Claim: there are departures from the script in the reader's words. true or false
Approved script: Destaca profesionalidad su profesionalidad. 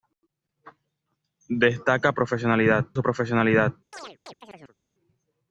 false